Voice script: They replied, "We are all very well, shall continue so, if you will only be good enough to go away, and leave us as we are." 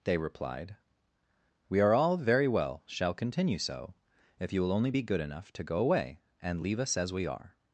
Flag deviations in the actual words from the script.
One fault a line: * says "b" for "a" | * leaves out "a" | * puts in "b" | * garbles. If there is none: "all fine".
all fine